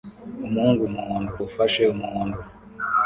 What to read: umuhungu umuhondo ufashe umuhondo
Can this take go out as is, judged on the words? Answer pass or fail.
pass